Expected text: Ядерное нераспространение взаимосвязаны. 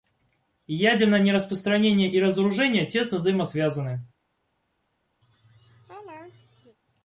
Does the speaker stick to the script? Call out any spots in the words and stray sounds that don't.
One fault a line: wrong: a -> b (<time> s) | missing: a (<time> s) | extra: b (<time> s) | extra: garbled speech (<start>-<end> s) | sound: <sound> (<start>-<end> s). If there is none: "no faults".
extra: и разоружение тесно (2.1 s)
sound: laugh (5.2-6.8 s)